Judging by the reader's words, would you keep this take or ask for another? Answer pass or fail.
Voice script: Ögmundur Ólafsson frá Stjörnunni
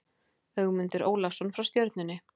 pass